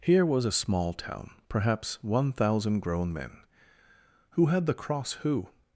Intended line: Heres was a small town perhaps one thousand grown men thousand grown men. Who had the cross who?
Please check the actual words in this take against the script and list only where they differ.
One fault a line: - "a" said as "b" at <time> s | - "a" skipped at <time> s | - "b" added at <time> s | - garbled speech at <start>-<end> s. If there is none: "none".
- "Heres" said as "Here" at 0.0 s
- "thousand grown men" skipped at 3.4 s